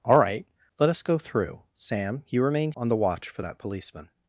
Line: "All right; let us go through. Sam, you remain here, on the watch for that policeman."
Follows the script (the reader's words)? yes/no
no